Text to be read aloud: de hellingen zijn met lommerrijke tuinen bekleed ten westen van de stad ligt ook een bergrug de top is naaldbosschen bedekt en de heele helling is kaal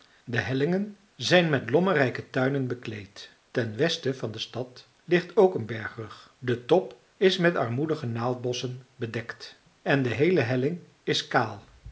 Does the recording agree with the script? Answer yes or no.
no